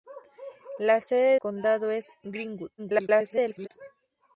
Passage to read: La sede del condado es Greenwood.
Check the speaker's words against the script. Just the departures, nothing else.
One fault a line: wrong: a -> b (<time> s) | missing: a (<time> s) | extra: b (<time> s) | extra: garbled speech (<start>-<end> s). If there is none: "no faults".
missing: del (1.4 s)
extra: garbled speech (2.8-3.7 s)